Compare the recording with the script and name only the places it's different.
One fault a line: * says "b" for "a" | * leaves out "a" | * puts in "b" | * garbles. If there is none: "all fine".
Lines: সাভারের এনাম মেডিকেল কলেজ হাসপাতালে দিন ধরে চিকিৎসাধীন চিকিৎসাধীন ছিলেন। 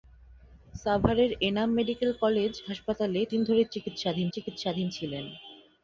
all fine